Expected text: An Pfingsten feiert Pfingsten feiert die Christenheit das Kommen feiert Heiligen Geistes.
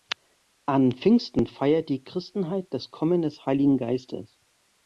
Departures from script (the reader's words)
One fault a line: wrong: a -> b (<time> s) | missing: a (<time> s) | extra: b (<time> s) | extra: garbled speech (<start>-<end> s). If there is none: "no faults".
missing: Pfingsten feiert (1.9 s)
wrong: feiert -> des (3.2 s)